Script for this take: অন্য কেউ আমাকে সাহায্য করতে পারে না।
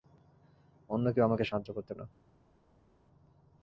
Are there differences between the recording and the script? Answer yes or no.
yes